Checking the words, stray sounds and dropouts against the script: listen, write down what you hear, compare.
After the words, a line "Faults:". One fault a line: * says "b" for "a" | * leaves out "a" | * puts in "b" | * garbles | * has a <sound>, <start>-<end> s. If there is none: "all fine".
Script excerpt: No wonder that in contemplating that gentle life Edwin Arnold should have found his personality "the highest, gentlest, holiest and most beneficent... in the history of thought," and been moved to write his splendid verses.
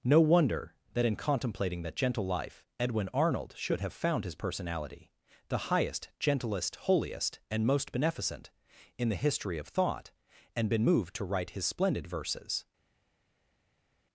No wonder that in contemplating that gentle life Edwin Arnold should have found his personality "the highest, gentlest, holiest and most beneficent... in the history of thought," and been moved to write his splendid verses.
Faults:
all fine